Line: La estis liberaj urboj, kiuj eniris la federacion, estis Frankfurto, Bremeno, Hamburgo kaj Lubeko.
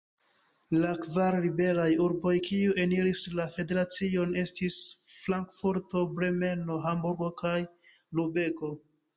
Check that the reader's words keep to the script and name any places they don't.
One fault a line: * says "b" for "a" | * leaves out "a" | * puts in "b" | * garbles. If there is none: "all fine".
* says "kvar" for "estis"